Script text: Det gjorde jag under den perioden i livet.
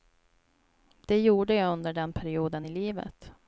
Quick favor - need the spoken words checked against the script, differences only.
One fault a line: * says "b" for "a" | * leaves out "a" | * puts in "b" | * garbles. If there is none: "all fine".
all fine